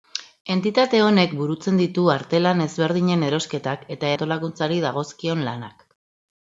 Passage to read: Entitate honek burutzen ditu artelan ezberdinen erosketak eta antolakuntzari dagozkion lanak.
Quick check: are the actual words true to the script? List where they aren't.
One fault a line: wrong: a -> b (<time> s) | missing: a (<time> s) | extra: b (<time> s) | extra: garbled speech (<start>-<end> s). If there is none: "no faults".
no faults